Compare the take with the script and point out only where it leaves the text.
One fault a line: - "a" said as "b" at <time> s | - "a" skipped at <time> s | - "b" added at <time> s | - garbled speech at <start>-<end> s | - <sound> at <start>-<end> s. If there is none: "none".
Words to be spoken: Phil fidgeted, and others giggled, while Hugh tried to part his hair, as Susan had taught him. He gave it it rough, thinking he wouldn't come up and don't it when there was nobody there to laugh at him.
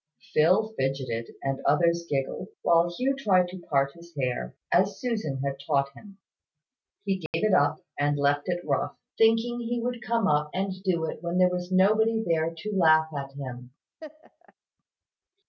- dropout at 7.3-7.3 s
- "up and left" added at 7.5 s
- "wouldn't" said as "would" at 9.8 s
- "don't" said as "do" at 10.8 s
- laugh at 14.0-14.5 s